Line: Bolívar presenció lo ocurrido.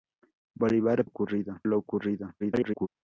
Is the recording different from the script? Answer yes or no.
yes